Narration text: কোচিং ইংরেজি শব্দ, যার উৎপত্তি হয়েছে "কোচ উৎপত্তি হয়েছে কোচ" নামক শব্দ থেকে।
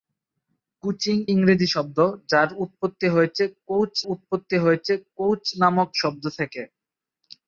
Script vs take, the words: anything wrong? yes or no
no